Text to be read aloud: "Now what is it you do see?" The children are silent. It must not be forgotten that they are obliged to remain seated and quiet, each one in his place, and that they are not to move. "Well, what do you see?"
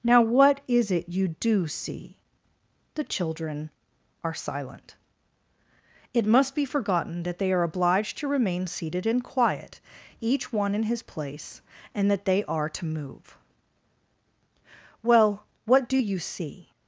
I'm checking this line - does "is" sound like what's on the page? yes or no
yes